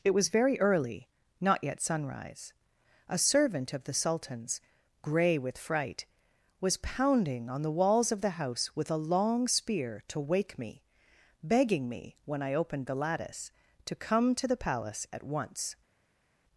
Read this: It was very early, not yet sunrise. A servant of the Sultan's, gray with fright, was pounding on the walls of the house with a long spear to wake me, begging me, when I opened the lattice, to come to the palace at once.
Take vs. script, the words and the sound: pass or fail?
pass